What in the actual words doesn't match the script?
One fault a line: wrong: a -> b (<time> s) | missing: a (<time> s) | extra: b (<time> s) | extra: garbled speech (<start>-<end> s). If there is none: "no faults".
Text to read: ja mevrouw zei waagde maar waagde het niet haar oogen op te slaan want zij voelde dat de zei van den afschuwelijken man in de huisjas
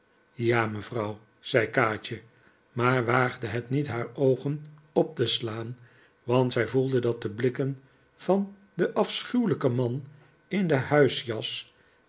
wrong: waagde -> kaatje (1.7 s)
wrong: zei -> blikken (7.3 s)